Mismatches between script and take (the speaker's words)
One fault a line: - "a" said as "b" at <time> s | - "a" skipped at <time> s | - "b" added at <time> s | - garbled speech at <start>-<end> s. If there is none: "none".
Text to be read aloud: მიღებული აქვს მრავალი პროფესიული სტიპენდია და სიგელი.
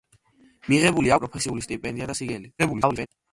- "აქვს მრავალი" skipped at 1.1 s
- garbled speech at 2.6-3.1 s